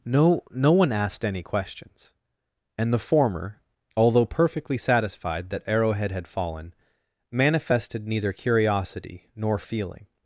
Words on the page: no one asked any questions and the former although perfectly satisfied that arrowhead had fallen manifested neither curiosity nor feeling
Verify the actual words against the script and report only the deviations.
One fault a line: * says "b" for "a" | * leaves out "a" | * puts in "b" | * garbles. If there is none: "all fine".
* puts in "no"